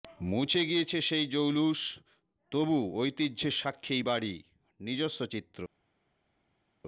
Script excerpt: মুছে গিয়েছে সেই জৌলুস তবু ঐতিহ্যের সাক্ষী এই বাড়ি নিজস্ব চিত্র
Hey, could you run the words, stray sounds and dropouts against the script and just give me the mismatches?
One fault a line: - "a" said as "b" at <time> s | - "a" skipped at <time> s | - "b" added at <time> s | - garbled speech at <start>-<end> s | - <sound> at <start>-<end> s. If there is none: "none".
none